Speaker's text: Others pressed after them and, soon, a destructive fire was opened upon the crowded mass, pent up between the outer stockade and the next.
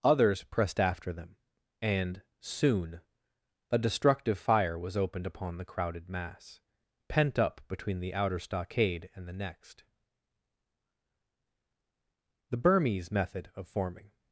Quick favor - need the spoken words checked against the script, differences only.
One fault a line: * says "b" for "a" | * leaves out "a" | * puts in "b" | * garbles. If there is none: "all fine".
* puts in "The Burmese method of forming"